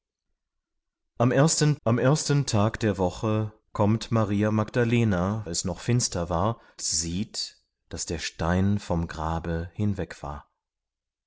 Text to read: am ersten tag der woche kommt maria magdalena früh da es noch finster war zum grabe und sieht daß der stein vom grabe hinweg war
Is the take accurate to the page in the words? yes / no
no